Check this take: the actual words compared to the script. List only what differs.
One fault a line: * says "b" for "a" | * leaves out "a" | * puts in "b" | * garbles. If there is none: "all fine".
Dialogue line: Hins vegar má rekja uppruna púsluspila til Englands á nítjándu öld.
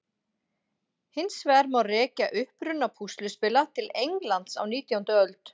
all fine